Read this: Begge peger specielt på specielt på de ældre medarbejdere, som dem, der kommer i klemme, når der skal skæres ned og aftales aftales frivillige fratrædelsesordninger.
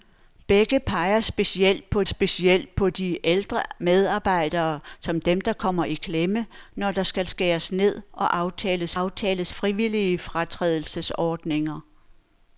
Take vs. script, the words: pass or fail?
pass